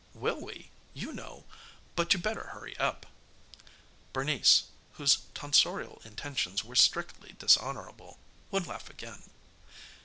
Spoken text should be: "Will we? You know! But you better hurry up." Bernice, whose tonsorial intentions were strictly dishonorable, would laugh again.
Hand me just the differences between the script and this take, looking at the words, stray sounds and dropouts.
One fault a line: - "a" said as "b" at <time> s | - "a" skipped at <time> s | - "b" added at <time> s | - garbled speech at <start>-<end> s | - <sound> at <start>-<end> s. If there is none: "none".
none